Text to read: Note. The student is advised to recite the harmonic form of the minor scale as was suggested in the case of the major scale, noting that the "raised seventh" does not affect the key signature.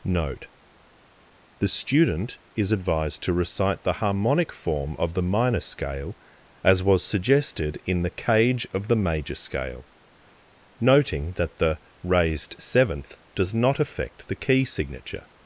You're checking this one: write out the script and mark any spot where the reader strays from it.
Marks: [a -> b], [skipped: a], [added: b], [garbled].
Note. The student is advised to recite the harmonic form of the minor scale as was suggested in the [case -> cage] of the major scale, noting that the "raised seventh" does not affect the key signature.